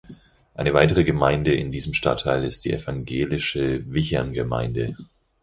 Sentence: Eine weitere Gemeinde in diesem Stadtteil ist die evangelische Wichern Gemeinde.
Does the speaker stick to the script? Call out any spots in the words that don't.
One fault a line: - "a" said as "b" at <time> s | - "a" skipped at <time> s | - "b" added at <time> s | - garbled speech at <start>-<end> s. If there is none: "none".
none